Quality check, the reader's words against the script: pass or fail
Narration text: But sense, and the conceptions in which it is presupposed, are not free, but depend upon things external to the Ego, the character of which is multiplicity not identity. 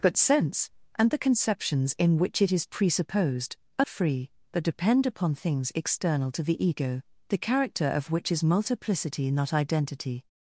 fail